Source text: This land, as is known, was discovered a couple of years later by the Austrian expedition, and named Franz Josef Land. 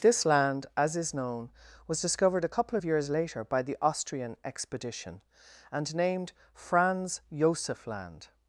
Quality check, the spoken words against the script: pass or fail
pass